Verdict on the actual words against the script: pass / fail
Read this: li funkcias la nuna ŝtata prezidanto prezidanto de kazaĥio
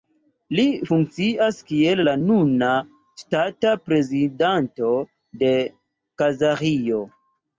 fail